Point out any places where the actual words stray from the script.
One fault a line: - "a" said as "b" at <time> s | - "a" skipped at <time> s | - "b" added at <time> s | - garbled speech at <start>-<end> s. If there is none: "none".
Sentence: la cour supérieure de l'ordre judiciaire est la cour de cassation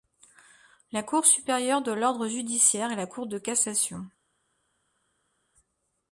none